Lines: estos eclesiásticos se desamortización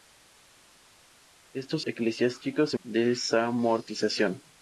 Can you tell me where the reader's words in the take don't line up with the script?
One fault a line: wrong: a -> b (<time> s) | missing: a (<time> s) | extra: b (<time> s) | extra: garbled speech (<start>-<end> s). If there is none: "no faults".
no faults